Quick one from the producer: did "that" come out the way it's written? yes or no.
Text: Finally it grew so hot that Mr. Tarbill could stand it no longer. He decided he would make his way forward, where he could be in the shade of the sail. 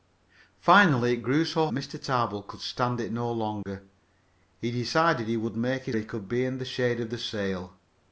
no